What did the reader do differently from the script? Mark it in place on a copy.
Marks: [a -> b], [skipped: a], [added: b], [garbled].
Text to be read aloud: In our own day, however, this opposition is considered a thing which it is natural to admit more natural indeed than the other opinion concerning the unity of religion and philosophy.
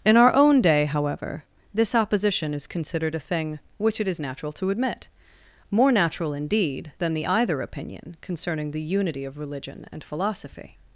In our own day, however, this opposition is considered a thing which it is natural to admit more natural indeed than the [other -> either] opinion concerning the unity of religion and philosophy.